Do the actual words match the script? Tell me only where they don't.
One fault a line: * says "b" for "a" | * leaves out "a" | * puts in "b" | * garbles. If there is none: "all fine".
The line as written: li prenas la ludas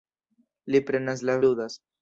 all fine